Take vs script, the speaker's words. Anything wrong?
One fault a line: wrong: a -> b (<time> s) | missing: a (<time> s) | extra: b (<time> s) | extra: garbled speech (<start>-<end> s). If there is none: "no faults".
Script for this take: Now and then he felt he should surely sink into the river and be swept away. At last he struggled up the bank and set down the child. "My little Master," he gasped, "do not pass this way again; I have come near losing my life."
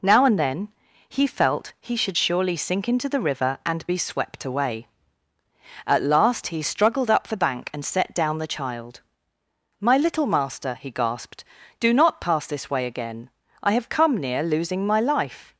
no faults